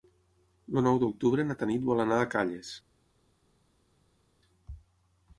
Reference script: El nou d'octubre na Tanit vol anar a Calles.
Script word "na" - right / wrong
right